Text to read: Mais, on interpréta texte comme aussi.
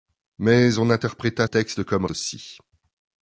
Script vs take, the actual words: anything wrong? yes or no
no